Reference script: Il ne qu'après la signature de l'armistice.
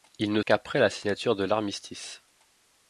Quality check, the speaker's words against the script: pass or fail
pass